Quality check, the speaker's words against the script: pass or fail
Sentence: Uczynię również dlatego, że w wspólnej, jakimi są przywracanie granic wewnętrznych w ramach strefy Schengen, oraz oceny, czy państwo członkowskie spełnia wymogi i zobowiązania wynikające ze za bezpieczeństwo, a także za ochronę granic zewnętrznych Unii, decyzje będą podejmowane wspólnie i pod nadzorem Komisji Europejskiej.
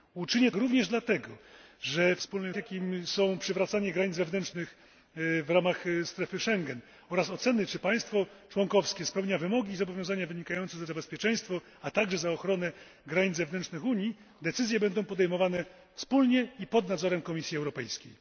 pass